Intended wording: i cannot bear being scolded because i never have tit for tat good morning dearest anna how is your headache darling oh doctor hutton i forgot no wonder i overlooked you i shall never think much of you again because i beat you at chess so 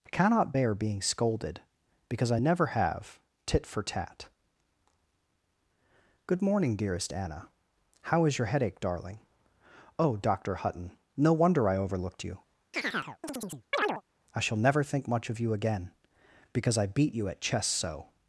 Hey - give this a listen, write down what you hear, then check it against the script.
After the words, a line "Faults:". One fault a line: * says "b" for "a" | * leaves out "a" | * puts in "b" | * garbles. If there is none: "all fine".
i cannot bear being scolded because i never have tit for tat good morning dearest anna how is your headache darling oh doctor hutton no wonder i overlooked you i shall never think much of you again because i beat you at chess so
Faults:
* leaves out "i forgot"